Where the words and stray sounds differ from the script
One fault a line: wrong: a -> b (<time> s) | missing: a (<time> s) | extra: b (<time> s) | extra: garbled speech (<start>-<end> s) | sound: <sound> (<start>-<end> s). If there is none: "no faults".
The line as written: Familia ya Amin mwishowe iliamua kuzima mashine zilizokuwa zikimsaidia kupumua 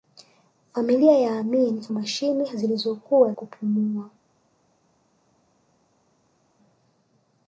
missing: mwishowe iliamua kuzima (1.9 s)
missing: zikimsaidia (3.3 s)